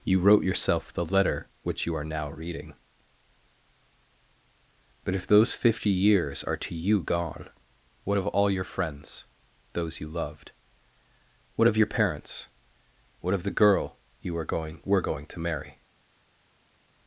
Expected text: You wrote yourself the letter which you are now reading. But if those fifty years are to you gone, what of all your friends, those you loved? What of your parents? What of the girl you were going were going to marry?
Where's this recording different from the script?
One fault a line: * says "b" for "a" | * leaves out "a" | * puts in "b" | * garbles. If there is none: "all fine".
all fine